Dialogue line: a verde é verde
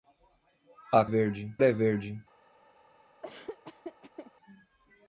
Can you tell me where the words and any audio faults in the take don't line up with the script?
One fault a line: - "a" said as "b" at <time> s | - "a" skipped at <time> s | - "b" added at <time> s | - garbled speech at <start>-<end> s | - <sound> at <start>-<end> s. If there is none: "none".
- laugh at 3.2-4.3 s